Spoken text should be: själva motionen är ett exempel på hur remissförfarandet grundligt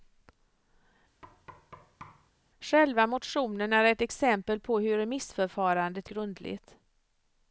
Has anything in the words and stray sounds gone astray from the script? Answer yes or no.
yes